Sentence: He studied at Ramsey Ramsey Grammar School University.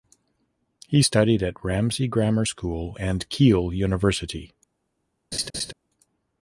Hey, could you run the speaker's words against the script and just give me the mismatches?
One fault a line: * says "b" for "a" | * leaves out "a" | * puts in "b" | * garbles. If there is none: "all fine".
* leaves out "Ramsey"
* puts in "and Keele"